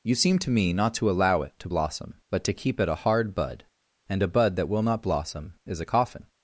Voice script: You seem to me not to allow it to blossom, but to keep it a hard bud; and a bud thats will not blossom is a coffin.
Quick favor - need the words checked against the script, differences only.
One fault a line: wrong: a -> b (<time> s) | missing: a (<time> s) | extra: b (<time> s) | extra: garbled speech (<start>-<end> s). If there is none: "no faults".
wrong: thats -> that (4.6 s)